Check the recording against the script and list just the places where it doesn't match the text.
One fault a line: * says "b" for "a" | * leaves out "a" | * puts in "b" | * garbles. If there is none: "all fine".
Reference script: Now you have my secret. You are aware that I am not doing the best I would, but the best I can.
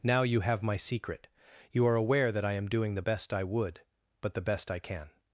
* leaves out "not"